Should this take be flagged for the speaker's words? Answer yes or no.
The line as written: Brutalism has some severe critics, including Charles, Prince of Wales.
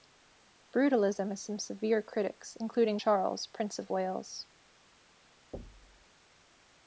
no